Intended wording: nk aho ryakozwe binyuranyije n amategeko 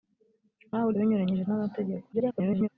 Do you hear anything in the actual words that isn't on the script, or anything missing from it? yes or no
yes